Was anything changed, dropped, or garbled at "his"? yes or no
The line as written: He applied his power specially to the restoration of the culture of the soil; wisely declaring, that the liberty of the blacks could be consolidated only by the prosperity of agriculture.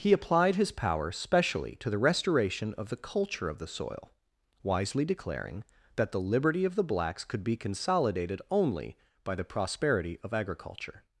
no